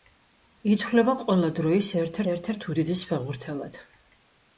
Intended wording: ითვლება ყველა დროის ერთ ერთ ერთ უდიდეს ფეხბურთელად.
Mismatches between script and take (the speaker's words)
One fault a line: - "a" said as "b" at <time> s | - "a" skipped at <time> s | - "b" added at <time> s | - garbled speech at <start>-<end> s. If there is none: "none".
none